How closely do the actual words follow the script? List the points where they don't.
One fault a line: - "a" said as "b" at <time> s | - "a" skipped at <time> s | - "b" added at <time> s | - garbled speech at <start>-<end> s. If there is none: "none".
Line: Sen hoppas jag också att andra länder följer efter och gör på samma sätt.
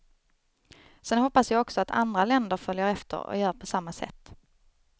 none